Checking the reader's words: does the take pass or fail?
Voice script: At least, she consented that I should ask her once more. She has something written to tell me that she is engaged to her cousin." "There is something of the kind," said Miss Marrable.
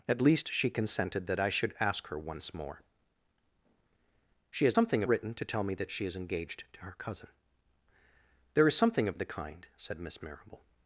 pass